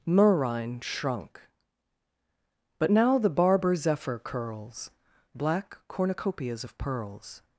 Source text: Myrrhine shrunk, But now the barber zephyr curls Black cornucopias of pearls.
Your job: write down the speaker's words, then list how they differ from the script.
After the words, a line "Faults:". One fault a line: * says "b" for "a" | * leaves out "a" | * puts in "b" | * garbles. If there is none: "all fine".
Myrrhine shrunk, But now the barber zephyr curls Black cornucopias of pearls.
Faults:
all fine